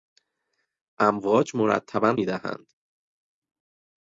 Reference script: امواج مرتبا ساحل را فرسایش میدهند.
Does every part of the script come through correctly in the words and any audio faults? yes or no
no